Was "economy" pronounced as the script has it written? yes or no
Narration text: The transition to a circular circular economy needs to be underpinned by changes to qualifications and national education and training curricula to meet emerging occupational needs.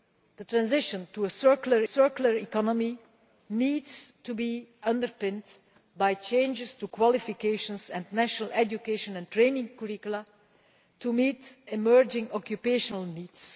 yes